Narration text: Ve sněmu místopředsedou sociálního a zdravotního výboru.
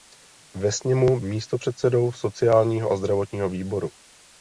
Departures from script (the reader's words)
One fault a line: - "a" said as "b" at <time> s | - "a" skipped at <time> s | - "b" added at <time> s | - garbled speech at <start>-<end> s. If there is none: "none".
none